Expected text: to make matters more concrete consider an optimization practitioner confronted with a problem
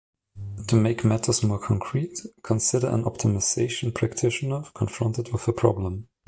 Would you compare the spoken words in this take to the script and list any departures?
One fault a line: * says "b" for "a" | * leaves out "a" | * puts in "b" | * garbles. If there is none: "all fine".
all fine